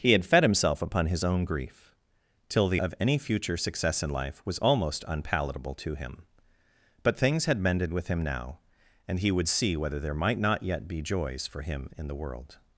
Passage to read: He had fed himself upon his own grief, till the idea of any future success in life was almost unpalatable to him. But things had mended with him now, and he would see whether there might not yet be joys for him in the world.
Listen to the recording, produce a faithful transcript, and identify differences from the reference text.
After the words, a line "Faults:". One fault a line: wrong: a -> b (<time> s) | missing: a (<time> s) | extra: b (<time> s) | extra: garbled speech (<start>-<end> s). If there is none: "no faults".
He had fed himself upon his own grief, till the of any future success in life was almost unpalatable to him. But things had mended with him now, and he would see whether there might not yet be joys for him in the world.
Faults:
missing: idea (2.8 s)